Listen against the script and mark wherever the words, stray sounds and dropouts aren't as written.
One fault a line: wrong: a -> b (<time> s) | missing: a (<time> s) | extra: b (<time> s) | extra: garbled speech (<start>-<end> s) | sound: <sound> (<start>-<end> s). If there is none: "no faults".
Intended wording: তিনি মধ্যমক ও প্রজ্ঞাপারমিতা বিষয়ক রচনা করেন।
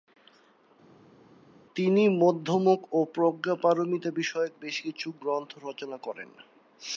extra: বেশ কিছু গ্রন্থ (4.6 s)